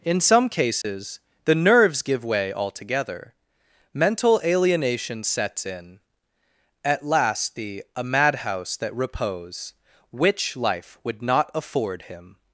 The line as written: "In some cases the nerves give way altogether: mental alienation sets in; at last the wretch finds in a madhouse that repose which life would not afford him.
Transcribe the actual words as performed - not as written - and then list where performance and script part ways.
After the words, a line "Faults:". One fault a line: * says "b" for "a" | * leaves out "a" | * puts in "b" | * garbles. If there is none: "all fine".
"In some cases the nerves give way altogether: mental alienation sets in; at last the a madhouse that repose which life would not afford him.
Faults:
* leaves out "wretch finds in"